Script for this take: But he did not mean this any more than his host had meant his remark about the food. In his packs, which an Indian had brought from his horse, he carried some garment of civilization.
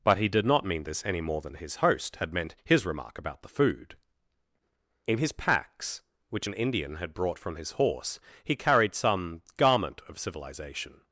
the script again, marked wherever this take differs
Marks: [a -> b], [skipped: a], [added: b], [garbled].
But he did not mean this any more than his host had meant his remark about the food. In his packs, which an Indian had brought from his horse, he carried some garment of civilization.